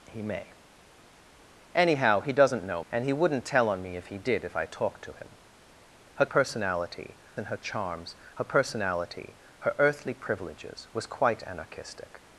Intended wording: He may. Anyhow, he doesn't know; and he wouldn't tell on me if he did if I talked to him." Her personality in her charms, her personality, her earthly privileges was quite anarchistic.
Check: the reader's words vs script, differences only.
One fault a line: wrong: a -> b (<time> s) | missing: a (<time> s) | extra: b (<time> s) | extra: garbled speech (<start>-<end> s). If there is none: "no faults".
no faults